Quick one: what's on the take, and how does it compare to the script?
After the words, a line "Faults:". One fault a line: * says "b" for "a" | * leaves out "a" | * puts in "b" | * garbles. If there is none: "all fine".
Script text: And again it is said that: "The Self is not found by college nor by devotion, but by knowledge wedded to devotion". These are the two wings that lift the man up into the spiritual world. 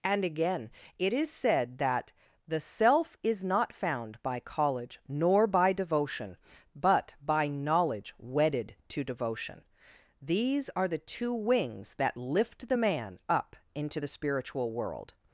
And again it is said that: "The Self is not found by college nor by devotion, but by knowledge wedded to devotion". These are the two wings that lift the man up into the spiritual world.
Faults:
all fine